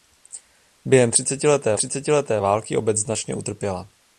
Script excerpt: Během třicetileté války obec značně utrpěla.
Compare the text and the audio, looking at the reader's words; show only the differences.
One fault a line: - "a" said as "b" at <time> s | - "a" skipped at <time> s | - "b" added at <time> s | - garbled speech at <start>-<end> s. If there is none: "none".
- "třicetileté" added at 1.8 s